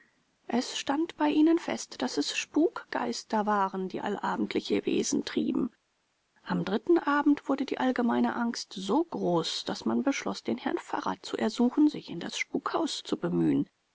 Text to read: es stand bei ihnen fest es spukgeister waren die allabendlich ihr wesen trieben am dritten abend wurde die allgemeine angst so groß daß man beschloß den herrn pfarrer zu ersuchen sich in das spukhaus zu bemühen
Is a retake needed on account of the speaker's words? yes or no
yes